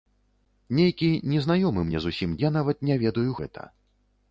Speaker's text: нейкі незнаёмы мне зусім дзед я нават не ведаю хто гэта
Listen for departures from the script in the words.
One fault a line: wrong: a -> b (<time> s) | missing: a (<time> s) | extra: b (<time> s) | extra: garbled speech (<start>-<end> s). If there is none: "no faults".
missing: дзед (2.4 s)
missing: хто (3.3 s)